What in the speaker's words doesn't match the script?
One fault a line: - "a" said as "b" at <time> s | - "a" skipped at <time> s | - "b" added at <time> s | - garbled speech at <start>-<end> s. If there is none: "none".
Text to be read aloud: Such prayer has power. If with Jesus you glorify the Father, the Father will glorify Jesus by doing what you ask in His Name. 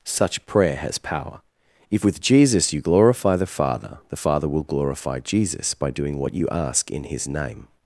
none